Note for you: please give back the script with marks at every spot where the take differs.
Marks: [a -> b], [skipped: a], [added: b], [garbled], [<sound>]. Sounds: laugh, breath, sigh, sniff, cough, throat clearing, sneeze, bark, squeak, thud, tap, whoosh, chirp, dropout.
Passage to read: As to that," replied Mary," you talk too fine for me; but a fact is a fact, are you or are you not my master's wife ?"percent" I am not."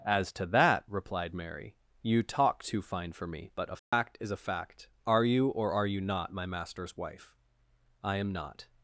As to that," replied Mary," you talk too fine for me; but a fact [dropout] is a fact, are you or are you not my master's wife [skipped: ?"percent"] I am not."